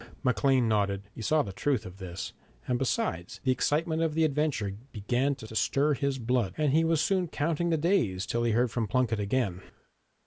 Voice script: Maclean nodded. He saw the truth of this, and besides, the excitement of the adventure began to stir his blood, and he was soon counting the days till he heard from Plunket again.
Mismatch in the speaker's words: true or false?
true